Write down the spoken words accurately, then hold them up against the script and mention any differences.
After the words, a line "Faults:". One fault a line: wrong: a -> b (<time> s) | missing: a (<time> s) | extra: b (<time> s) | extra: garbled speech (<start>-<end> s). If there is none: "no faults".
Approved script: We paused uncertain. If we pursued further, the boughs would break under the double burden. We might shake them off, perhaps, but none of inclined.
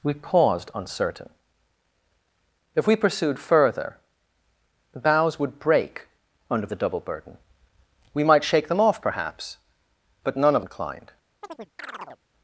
We paused uncertain. If we pursued further, the boughs would break under the double burden. We might shake them off, perhaps, but none of inclined.
Faults:
no faults